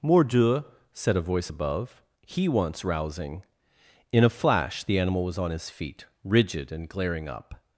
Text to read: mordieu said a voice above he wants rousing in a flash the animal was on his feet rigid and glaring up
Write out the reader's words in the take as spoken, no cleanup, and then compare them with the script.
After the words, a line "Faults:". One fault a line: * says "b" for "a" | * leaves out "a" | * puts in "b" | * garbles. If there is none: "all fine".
mordieu said a voice above he wants rousing in a flash the animal was on his feet rigid and glaring up
Faults:
all fine